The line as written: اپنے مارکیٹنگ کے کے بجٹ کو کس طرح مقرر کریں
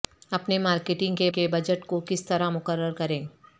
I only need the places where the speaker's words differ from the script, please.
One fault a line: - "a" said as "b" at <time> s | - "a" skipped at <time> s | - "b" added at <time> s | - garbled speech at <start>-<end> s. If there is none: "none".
none